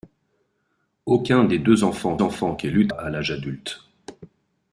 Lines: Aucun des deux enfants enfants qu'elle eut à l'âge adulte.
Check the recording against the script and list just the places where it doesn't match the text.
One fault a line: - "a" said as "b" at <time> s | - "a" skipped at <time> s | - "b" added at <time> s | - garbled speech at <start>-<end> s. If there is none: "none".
none